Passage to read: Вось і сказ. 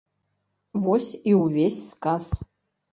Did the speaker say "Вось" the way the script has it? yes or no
yes